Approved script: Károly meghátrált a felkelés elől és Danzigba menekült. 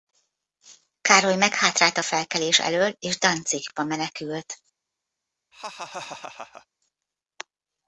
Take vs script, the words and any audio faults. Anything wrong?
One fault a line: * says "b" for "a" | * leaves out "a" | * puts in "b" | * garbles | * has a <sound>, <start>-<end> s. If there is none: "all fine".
* has a laugh, 5.5-6.7 s